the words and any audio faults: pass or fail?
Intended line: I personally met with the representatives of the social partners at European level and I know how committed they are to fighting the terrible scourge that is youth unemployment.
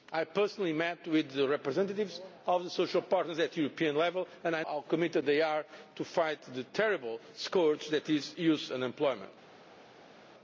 fail